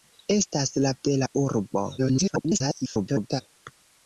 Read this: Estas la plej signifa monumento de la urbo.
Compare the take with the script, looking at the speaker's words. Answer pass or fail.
fail